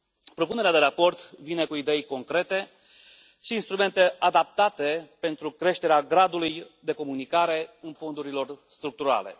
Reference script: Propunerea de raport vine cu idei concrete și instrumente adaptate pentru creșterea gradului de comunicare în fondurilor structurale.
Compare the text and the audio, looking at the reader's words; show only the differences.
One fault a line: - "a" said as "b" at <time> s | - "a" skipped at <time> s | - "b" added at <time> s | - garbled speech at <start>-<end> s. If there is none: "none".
none